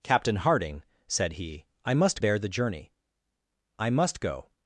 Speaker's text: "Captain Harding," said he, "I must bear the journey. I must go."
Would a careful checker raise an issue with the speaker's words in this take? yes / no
no